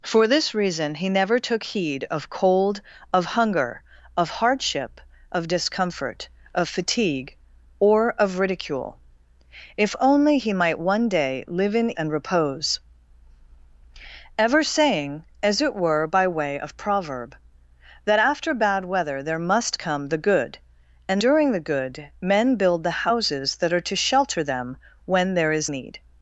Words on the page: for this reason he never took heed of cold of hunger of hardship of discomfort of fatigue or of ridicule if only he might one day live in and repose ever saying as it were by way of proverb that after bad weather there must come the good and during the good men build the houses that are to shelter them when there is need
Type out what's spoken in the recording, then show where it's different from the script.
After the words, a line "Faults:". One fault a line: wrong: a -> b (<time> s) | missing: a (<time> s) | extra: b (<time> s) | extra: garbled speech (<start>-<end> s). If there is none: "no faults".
for this reason he never took heed of cold of hunger of hardship of discomfort of fatigue or of ridicule if only he might one day live in and repose ever saying as it were by way of proverb that after bad weather there must come the good and during the good men build the houses that are to shelter them when there is need
Faults:
no faults